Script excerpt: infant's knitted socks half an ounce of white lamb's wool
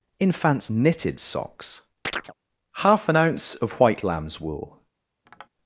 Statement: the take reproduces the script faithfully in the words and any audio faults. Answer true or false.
false